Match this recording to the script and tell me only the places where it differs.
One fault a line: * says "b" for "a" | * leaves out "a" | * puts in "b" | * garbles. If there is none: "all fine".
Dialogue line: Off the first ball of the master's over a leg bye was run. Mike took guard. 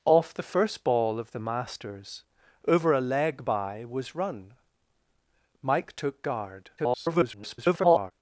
* garbles